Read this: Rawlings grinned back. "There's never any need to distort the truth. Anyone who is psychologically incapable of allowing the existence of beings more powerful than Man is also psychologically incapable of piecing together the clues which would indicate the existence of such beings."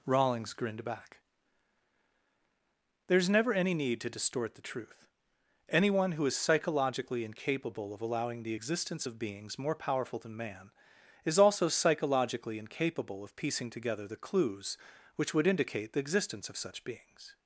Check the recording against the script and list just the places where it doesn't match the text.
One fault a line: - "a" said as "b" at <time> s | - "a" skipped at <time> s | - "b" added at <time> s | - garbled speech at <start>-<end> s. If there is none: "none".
none